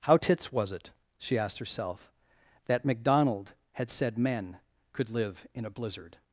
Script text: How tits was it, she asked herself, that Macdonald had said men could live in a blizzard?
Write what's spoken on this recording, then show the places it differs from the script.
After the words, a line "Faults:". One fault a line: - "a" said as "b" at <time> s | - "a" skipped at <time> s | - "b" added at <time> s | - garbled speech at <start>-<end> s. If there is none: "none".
How tits was it, she asked herself, that Macdonald had said men could live in a blizzard?
Faults:
none